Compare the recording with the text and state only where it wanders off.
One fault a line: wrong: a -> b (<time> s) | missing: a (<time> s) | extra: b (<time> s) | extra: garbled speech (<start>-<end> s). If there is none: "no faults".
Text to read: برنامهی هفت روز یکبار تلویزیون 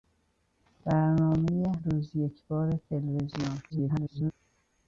missing: هفت (1.6 s)
extra: garbled speech (3.7-4.3 s)